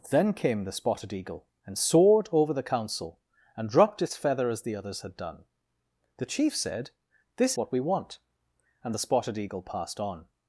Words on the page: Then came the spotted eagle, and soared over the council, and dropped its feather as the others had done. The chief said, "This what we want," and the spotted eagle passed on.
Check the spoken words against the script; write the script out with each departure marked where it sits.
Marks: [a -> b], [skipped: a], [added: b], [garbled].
Then came the spotted eagle, and soared over the council, and dropped its feather as the others had done. The chief said, "This what we want," and the spotted eagle passed on.